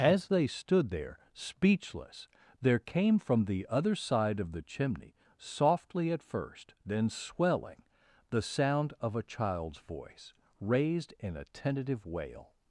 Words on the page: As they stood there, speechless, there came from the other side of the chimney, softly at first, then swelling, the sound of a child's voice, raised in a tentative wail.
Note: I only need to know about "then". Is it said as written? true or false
true